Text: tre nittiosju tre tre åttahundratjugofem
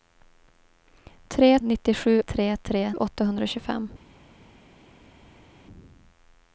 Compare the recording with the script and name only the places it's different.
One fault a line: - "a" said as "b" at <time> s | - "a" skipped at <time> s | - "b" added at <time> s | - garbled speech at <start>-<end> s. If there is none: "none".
none